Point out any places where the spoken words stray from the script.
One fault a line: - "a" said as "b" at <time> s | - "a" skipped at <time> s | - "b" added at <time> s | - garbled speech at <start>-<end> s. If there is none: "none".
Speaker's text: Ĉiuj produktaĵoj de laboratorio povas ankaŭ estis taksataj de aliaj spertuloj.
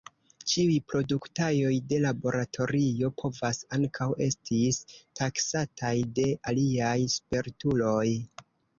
none